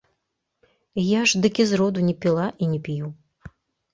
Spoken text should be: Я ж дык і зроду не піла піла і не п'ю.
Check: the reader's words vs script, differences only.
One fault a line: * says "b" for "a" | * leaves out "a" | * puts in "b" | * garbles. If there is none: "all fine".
* leaves out "піла"